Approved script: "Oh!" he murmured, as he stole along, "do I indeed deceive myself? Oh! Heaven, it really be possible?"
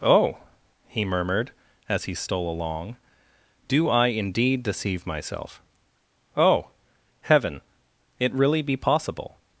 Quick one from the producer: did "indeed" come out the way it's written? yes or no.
yes